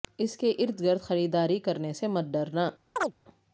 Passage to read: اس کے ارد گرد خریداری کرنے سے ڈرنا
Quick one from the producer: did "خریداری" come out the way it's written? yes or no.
yes